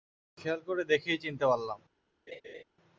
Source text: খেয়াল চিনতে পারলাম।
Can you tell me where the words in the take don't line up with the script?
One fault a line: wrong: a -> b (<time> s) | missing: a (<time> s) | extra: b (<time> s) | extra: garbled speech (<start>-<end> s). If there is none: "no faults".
extra: করে দেখেই (0.7 s)